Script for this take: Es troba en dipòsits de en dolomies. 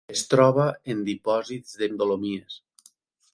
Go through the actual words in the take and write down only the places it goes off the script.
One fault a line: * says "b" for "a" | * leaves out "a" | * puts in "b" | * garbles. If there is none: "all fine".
all fine